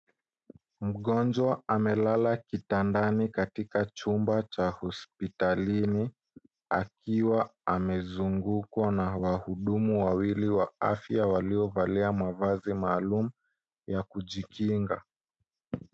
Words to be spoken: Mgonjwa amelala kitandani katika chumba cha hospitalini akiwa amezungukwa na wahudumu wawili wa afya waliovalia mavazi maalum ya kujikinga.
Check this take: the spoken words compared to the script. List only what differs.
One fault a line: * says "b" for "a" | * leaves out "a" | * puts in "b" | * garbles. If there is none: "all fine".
all fine